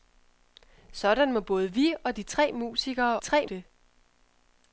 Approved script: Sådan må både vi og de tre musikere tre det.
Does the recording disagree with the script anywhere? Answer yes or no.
no